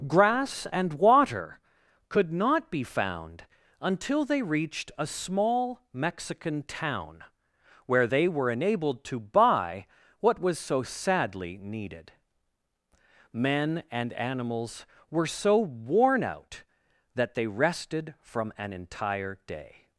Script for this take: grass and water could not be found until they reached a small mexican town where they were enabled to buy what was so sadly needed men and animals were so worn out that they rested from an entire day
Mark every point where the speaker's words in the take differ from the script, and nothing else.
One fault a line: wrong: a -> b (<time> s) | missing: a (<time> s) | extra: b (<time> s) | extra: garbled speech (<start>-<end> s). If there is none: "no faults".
no faults